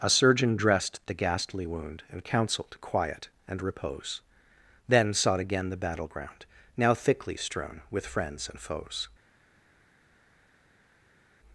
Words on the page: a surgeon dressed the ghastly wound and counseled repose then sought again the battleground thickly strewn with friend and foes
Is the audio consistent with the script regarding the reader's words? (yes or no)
no